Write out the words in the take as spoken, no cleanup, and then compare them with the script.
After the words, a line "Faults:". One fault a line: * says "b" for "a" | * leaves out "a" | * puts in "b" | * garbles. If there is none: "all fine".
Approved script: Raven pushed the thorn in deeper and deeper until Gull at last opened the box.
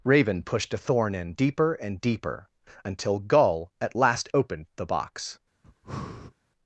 Raven pushed a thorn in deeper and deeper until Gull at last opened the box.
Faults:
* says "a" for "the"